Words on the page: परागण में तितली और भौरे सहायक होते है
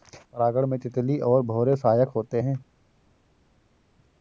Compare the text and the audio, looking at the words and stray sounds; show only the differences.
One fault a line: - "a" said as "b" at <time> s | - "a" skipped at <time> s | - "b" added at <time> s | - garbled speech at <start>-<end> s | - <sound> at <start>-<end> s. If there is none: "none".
none